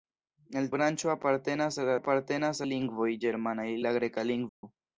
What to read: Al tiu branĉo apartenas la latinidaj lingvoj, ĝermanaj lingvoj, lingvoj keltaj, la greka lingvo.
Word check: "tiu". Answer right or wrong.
wrong